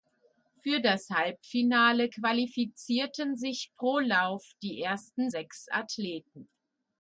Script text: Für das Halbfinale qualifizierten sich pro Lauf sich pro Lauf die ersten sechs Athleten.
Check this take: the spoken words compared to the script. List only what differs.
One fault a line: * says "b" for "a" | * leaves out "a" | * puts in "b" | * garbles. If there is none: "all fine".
* leaves out "sich pro Lauf"